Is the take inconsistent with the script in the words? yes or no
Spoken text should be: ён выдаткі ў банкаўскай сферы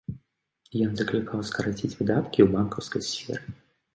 yes